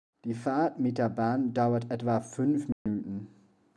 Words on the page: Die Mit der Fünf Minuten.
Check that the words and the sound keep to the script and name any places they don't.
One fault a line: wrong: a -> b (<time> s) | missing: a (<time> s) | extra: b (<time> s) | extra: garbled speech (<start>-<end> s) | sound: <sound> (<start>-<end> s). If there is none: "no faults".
extra: Fahrt (0.3 s)
extra: Bahn dauert etwa (1.1 s)
sound: dropout (2.7-2.9 s)